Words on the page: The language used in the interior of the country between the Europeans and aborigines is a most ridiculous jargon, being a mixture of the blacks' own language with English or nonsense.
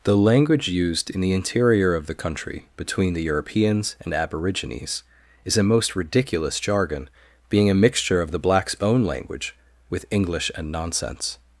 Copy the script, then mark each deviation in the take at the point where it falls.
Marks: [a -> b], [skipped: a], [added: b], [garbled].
The language used in the interior of the country between the Europeans and aborigines is a most ridiculous jargon, being a mixture of the blacks' own language with English [or -> and] nonsense.